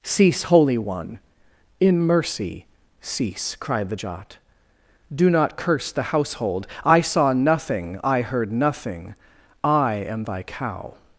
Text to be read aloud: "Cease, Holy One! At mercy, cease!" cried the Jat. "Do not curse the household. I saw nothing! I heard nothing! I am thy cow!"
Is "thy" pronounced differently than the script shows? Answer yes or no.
no